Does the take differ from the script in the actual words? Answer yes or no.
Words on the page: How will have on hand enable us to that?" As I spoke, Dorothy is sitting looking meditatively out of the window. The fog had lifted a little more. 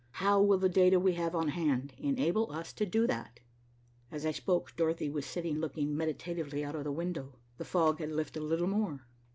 yes